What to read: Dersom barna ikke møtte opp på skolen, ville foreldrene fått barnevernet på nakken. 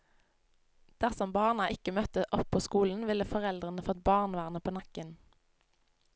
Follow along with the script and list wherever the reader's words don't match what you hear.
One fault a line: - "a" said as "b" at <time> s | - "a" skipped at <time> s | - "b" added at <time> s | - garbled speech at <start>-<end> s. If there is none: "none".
none